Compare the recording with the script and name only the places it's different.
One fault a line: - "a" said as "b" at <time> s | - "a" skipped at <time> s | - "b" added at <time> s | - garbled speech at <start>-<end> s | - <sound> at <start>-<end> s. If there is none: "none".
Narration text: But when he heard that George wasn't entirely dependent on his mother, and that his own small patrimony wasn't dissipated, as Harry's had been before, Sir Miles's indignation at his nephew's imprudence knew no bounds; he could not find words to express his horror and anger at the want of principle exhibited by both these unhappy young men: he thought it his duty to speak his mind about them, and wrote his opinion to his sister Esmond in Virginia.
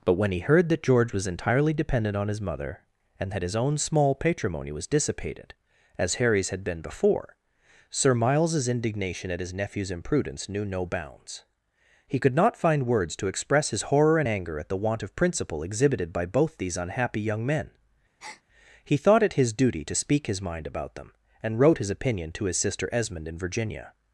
- "wasn't" said as "was" at 1.1 s
- "wasn't" said as "was" at 4.7 s
- breath at 18.2-18.4 s